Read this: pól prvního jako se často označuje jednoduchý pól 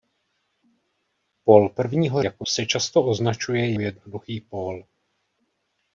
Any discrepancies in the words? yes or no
no